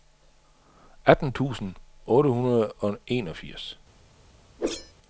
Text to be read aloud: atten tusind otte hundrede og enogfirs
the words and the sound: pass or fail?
fail